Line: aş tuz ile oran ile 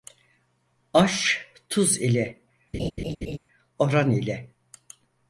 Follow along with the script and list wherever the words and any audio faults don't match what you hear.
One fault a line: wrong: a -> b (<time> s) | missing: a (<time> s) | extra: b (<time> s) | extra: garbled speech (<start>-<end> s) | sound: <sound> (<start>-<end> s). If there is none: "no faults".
sound: laugh (2.7-3.4 s)